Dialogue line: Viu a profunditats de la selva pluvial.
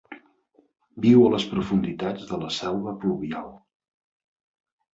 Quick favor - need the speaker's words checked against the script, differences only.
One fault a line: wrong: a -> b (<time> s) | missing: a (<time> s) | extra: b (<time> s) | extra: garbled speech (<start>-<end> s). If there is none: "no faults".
extra: les (1.3 s)